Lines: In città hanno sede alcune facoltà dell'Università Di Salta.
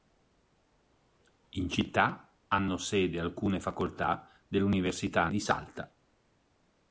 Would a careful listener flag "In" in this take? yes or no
no